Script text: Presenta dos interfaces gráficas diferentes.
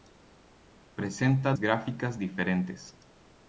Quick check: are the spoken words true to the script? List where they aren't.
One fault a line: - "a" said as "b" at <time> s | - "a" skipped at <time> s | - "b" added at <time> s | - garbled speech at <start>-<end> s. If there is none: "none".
- "dos interfaces" skipped at 1.5 s